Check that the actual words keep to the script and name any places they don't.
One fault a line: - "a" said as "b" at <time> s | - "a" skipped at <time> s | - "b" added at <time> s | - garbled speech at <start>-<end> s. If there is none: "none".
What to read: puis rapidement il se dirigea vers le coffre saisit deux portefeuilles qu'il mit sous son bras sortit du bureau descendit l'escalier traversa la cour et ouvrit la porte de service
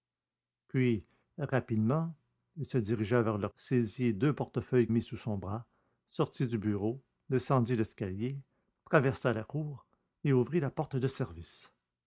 - "coffre" skipped at 3.5 s
- "qu'il" skipped at 4.9 s